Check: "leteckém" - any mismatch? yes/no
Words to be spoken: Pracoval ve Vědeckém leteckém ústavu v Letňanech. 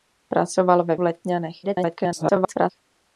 yes